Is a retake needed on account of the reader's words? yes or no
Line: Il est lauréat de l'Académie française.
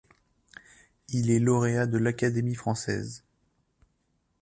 no